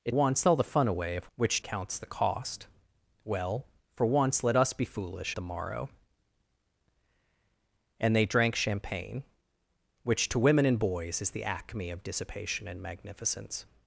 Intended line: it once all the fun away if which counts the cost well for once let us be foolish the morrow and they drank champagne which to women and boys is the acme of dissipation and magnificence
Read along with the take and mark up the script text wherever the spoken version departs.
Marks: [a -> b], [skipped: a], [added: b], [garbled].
it once all the fun away if which counts the cost well for once let us be foolish the morrow and they drank champagne which to women and boys is the acme of dissipation and magnificence